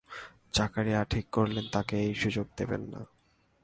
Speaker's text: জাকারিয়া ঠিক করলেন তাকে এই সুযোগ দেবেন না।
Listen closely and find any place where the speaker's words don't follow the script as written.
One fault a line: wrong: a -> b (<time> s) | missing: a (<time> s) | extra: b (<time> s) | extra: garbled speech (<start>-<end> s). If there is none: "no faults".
no faults